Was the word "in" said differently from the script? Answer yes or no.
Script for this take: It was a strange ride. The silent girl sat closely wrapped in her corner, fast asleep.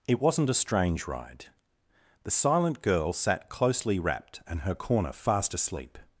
yes